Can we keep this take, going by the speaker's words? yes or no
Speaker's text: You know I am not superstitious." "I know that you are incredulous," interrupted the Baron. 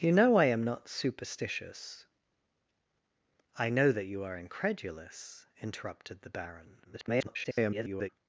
no